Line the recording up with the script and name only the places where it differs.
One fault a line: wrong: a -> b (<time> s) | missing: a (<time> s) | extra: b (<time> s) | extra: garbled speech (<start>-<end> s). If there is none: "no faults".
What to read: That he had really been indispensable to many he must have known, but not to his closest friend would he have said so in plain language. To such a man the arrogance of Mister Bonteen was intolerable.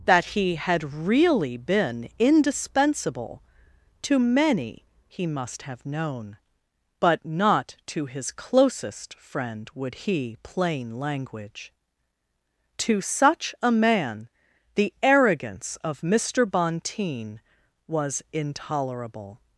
missing: have said so in (10.4 s)